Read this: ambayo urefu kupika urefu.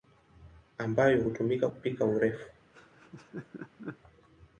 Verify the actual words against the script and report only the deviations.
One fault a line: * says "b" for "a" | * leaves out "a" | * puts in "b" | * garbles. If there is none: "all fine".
* says "hutumika" for "urefu"